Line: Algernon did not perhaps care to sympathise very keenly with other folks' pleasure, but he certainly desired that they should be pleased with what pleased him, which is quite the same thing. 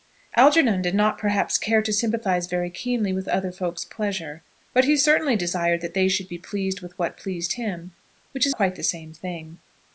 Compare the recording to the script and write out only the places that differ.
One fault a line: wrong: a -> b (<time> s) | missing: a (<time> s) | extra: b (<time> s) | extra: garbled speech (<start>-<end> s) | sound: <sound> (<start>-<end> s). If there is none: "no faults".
no faults